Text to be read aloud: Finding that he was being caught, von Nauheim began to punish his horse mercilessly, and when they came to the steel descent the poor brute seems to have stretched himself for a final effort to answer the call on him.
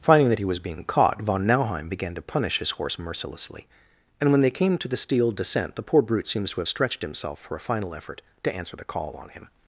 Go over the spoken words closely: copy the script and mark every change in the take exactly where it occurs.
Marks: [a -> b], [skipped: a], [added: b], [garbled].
Finding that he was being caught, von Nauheim began to punish his horse mercilessly, and when they came to the steel descent the poor brute seems to have stretched himself for a final effort to answer the call on him.